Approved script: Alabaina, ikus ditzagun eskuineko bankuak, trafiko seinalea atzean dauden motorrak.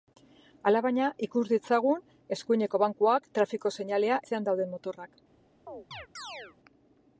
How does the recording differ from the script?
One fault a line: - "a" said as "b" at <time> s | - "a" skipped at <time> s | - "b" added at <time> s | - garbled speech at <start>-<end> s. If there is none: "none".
none